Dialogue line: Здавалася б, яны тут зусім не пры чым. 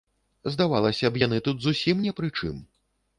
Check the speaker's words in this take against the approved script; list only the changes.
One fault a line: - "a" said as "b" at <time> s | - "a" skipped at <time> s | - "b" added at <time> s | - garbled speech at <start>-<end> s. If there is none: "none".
none